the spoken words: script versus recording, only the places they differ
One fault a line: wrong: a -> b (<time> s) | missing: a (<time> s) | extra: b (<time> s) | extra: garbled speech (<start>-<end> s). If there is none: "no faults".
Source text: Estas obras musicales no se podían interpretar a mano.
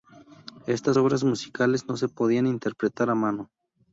no faults